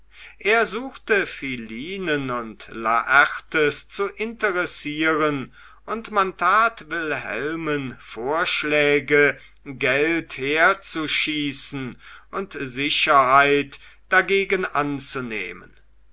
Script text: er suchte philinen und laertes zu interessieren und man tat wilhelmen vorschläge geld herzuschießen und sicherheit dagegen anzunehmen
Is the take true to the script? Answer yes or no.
yes